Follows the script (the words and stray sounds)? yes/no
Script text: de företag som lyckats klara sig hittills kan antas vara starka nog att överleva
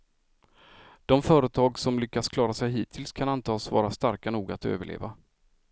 yes